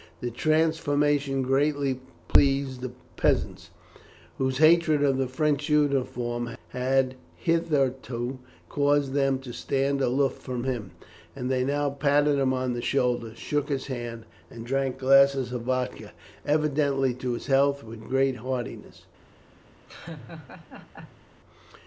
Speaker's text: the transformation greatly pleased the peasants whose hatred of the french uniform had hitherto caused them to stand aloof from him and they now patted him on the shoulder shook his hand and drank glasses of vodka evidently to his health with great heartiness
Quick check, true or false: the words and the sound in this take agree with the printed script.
false